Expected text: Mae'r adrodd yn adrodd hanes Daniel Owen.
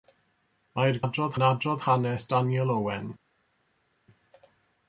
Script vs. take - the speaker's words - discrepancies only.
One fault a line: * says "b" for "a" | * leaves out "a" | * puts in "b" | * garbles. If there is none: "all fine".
all fine